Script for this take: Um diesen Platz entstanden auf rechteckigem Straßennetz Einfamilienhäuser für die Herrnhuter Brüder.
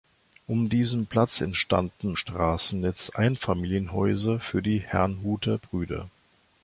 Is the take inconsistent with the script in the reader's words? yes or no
yes